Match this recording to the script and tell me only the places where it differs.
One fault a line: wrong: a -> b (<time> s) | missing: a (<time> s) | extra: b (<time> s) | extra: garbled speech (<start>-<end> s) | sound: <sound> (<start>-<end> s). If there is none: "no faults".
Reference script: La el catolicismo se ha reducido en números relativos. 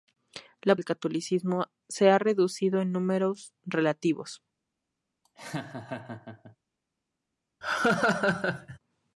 sound: laugh (5.2-6.6 s)
sound: laugh (7.6-8.8 s)